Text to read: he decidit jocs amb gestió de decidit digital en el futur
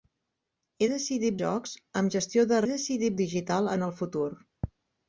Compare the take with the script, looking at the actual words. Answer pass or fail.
pass